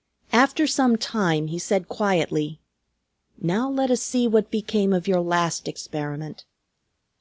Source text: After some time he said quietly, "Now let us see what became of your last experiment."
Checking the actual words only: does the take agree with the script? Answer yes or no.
yes